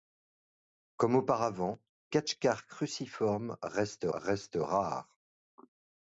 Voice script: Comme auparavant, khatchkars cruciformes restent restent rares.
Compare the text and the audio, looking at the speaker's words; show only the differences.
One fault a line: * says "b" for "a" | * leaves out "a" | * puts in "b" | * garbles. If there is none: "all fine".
all fine